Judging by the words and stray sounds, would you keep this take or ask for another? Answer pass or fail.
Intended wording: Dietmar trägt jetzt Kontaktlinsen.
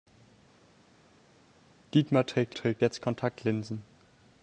fail